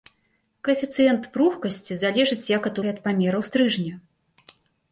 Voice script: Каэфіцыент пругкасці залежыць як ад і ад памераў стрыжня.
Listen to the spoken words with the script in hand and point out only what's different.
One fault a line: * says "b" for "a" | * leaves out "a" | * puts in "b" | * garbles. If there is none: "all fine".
all fine